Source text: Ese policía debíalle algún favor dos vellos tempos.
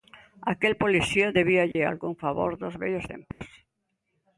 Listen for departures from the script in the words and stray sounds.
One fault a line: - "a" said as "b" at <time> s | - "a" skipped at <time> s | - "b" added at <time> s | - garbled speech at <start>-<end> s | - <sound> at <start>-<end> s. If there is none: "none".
- "Ese" said as "Aquel" at 0.5 s
- dropout at 1.7-1.8 s
- dropout at 3.3-3.4 s